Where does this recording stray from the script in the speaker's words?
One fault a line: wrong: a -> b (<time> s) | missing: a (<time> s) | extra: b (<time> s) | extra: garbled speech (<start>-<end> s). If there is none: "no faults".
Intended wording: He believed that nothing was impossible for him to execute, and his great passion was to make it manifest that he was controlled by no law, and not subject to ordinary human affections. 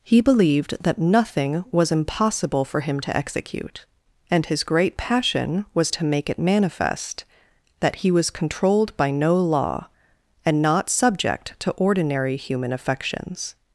no faults